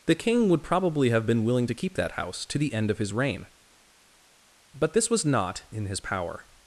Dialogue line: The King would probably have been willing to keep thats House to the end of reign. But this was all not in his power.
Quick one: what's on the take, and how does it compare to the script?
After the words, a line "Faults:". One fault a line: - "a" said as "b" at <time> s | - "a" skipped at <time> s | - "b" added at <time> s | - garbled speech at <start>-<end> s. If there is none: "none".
The King would probably have been willing to keep that House to the end of his reign. But this was not in his power.
Faults:
- "thats" said as "that" at 1.9 s
- "his" added at 3.0 s
- "all" skipped at 5.3 s